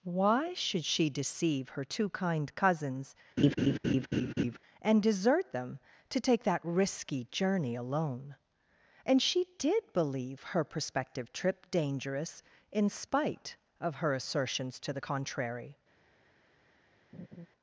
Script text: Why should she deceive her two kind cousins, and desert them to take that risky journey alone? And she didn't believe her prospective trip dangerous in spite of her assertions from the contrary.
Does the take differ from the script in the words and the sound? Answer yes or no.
yes